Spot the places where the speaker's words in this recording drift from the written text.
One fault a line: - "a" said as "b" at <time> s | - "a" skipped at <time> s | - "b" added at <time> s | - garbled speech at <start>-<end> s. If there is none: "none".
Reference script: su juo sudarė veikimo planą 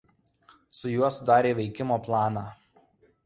none